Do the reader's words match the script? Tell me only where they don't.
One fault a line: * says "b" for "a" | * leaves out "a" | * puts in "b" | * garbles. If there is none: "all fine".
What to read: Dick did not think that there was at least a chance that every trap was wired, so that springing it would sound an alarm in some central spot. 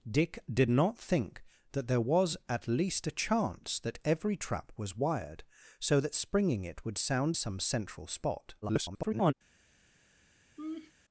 * leaves out "an alarm in"
* garbles